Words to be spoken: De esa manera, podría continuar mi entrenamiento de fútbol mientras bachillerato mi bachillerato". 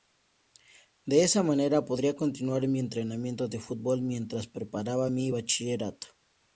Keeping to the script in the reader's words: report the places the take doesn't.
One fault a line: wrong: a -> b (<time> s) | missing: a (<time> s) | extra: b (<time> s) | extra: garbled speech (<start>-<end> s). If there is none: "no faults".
wrong: bachillerato -> preparaba (4.5 s)